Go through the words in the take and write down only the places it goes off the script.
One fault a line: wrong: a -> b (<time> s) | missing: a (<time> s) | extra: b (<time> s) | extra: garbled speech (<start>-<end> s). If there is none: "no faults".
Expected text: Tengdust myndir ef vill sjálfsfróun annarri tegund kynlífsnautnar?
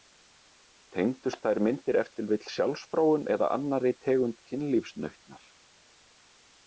extra: þær (1.4 s)
extra: til (2.1 s)
extra: eða (3.4 s)